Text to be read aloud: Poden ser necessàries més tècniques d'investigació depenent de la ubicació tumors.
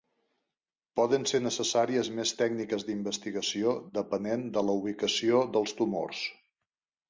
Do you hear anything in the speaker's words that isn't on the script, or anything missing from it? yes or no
yes